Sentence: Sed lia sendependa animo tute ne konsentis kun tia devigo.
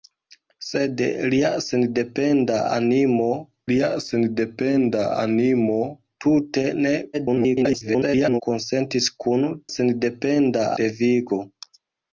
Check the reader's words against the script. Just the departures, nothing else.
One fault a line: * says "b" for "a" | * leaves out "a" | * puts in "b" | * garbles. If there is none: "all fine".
* puts in "lia sendependa animo"
* garbles
* says "sendependa" for "tia"